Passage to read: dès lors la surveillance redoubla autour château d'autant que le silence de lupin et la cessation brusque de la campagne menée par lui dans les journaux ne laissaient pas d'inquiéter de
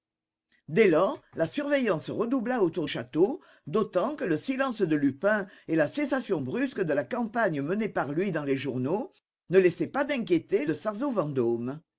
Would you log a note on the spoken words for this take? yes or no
no